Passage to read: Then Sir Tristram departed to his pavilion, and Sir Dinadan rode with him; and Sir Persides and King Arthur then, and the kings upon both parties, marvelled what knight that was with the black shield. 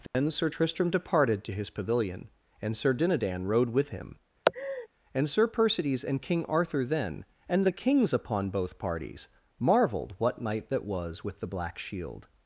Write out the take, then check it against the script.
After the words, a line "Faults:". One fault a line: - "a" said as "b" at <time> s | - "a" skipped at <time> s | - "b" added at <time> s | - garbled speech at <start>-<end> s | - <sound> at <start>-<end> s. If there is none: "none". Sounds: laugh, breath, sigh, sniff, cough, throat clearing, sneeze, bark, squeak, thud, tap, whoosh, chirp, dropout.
Then Sir Tristram departed to his pavilion, and Sir Dinadan rode with him; and Sir Persides and King Arthur then, and the kings upon both parties, marvelled what knight that was with the black shield.
Faults:
- dropout at 0.1-0.1 s
- laugh at 4.5-4.9 s